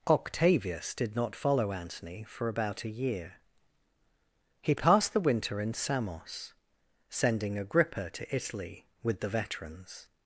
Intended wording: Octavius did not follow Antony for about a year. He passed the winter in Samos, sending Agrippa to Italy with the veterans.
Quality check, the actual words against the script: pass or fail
pass